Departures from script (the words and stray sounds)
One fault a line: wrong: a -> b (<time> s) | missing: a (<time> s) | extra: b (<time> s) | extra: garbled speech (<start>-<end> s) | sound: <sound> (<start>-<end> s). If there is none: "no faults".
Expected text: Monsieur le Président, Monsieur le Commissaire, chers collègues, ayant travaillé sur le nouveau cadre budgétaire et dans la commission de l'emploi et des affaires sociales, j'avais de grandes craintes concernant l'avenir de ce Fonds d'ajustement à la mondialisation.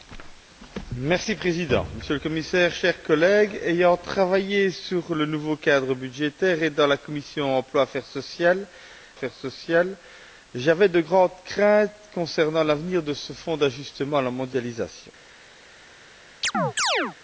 extra: affaires sociales (9.2 s)
sound: chirp (16.4-17.2 s)